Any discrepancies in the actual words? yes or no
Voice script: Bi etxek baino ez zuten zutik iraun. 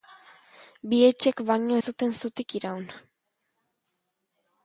no